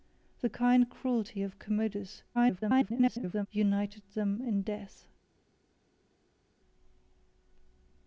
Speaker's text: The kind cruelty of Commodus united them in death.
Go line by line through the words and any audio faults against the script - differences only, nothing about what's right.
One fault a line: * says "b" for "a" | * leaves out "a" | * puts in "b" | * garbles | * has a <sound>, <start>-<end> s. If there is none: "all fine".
* garbles